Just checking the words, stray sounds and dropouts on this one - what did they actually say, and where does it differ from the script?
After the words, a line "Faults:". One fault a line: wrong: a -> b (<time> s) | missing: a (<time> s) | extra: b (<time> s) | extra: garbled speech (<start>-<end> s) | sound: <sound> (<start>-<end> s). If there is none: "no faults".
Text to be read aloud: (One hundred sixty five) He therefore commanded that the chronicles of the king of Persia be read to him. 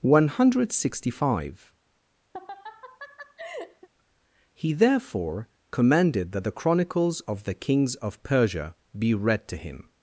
(One hundred sixty five) He therefore commanded that the chronicles of the kings of Persia be read to him.
Faults:
sound: laugh (2.3-3.9 s)
wrong: king -> kings (7.5 s)